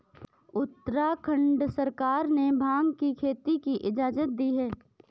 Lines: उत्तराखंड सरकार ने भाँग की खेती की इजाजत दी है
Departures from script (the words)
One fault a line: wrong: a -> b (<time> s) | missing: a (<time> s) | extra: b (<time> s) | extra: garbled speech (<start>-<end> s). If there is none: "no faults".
no faults